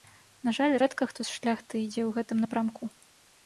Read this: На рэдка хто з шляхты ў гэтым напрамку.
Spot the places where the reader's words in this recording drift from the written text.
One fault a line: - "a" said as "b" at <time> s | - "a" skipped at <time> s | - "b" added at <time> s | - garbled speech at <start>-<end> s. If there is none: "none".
- "жаль" added at 0.6 s
- "ідзе" added at 1.9 s